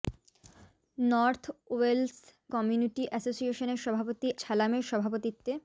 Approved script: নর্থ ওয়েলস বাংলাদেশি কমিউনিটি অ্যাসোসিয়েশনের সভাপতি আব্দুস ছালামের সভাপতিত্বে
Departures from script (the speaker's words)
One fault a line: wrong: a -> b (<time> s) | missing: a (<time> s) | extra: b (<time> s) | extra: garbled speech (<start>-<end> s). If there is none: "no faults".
missing: বাংলাদেশি (2.1 s)
missing: আব্দুস (4.3 s)